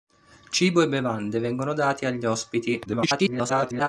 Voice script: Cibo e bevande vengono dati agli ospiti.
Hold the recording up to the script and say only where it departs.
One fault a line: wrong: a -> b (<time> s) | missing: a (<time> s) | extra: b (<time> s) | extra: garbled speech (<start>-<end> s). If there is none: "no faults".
extra: garbled speech (2.9-3.9 s)